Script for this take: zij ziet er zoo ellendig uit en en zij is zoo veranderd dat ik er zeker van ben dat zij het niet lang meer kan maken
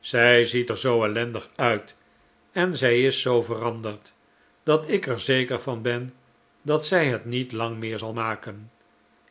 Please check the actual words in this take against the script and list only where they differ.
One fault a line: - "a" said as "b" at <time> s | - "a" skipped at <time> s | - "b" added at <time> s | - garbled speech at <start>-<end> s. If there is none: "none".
- "en" skipped at 2.8 s
- "kan" said as "zal" at 8.0 s